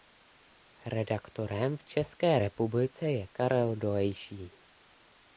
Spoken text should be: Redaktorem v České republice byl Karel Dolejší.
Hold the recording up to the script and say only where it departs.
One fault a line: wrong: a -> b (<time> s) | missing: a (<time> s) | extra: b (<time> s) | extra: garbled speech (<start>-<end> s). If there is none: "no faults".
wrong: byl -> je (3.1 s)